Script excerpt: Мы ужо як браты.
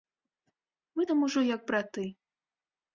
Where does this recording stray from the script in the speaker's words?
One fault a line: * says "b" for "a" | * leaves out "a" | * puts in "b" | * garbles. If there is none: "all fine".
* puts in "там"